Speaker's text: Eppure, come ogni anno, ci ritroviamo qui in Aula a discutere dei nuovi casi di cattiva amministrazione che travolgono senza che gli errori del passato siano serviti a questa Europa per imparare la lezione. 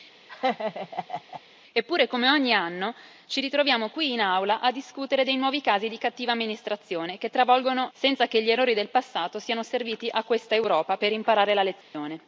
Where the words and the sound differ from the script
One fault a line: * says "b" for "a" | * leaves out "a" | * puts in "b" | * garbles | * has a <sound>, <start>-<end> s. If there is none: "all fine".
* has a laugh, 0.3-1.4 s
* has a dropout, 11.8-11.9 s